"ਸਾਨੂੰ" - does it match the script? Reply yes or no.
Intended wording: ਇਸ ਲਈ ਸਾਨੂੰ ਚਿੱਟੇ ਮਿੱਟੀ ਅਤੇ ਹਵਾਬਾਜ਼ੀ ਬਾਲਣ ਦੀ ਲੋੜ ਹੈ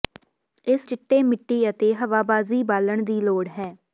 no